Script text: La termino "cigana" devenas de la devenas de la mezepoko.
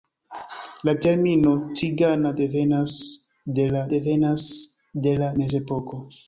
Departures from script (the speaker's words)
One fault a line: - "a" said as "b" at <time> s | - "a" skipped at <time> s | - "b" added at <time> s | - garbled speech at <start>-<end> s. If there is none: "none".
none